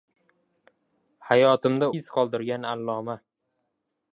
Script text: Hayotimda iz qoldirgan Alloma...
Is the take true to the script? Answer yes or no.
yes